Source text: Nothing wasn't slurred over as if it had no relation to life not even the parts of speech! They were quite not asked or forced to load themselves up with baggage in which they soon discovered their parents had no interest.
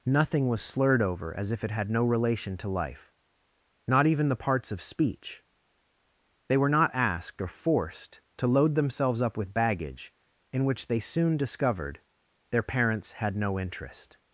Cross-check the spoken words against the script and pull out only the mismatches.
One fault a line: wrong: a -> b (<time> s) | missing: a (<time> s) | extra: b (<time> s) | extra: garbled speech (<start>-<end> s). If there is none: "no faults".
wrong: wasn't -> was (0.5 s)
missing: quite (6.7 s)